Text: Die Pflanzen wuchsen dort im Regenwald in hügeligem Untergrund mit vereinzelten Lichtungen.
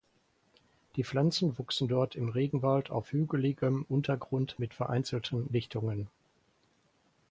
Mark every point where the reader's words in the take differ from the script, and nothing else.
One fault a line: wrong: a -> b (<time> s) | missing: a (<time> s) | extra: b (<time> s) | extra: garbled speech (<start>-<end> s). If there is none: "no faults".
wrong: in -> auf (2.9 s)